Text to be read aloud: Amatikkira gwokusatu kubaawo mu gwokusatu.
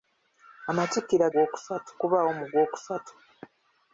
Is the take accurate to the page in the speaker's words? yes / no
yes